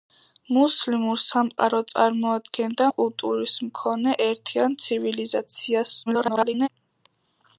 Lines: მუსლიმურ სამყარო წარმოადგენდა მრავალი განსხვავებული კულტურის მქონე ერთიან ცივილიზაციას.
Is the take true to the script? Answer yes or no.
no